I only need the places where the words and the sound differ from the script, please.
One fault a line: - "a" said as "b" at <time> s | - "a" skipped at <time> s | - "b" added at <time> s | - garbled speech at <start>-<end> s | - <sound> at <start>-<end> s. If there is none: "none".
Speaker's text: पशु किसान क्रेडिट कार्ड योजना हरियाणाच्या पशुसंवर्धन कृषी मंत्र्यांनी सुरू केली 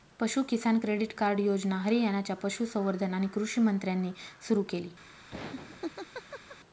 - "आणि" added at 3.1 s
- laugh at 5.3-6.6 s